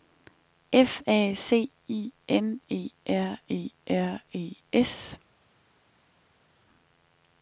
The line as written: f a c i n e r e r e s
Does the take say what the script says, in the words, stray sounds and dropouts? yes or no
yes